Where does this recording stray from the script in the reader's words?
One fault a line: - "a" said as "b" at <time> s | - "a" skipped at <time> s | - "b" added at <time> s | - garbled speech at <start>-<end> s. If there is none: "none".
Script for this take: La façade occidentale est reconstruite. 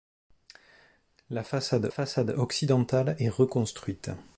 - "façade" added at 1.9 s